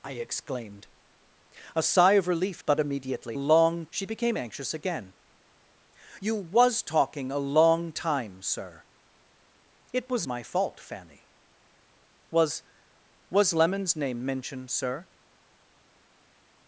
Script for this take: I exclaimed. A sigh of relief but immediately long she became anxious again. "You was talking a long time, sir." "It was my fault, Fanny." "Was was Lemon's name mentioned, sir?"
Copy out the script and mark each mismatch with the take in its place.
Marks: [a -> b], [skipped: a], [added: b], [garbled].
I exclaimed. A sigh of relief but immediately long she became anxious again. "You was talking a long time, sir." "It was my fault, Fanny." "Was was Lemon's name mentioned, sir?"